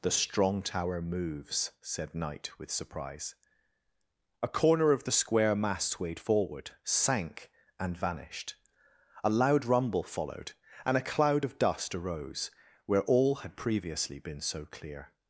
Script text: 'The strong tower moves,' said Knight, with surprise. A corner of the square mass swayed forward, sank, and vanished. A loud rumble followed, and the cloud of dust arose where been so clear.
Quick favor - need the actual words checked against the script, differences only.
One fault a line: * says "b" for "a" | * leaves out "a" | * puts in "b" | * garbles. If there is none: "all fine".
* says "a" for "the"
* puts in "all had previously"